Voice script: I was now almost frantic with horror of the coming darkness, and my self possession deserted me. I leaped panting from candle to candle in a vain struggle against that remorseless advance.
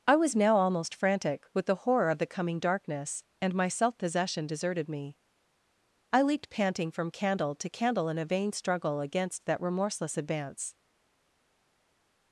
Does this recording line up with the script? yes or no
no